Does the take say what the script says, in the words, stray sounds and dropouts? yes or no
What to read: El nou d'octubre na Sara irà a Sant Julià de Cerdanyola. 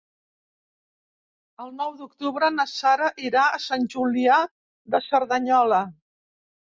yes